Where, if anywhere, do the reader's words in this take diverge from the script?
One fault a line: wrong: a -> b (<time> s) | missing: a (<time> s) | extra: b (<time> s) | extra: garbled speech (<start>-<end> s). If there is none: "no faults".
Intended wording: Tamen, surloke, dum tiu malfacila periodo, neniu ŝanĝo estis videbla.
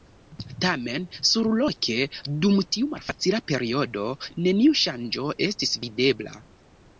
no faults